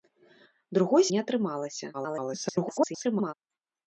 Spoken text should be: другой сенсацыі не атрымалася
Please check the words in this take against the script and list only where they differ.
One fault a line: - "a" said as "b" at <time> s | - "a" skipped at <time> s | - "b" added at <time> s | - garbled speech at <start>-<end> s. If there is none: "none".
- "сенсацыі" skipped at 1.0 s
- garbled speech at 1.9-3.3 s